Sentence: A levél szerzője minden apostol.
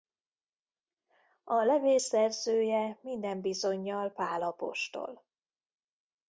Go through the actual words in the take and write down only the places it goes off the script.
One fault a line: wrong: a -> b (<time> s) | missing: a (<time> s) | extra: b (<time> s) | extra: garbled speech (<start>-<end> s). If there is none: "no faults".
extra: bizonnyal Pál (3.4 s)